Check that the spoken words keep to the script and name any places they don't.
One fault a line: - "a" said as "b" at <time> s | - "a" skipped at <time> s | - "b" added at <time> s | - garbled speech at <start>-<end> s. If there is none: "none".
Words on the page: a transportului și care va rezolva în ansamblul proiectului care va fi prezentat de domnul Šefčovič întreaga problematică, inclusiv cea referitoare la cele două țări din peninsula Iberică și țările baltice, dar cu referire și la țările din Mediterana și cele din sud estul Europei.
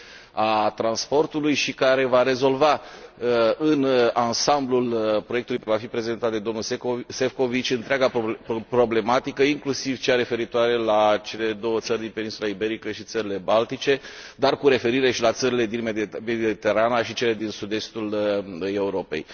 - "care" skipped at 5.6 s